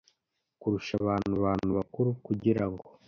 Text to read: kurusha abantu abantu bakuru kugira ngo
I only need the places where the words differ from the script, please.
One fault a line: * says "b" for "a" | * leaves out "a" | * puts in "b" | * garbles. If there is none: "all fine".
all fine